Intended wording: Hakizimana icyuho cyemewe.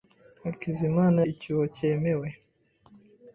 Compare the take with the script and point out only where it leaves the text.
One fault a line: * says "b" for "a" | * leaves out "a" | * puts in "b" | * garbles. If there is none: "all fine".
all fine